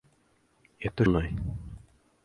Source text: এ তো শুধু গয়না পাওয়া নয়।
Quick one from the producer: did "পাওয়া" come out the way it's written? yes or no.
no